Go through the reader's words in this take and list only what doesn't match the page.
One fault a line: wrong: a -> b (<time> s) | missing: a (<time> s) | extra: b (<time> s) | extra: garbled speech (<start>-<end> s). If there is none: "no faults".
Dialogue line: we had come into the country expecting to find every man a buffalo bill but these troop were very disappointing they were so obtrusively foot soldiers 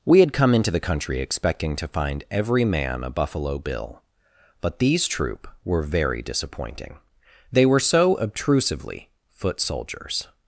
no faults